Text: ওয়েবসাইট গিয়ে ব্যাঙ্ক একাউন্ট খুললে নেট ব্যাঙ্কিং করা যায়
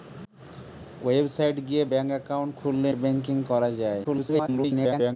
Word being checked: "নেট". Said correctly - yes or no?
no